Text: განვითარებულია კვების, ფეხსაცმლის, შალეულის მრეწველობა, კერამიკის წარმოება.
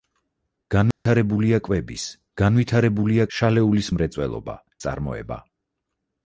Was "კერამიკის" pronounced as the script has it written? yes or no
no